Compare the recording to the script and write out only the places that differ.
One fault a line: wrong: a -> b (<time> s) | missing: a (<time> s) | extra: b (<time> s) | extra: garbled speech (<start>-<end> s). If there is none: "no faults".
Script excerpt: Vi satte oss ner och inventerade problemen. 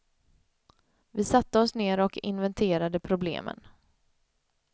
no faults